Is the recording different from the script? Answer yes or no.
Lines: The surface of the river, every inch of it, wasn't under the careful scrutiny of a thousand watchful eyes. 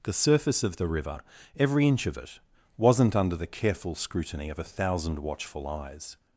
no